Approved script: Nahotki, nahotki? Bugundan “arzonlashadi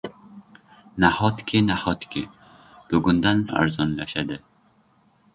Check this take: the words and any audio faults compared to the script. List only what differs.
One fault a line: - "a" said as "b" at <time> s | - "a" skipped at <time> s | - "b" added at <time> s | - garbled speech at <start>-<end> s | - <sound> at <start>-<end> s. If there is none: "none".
none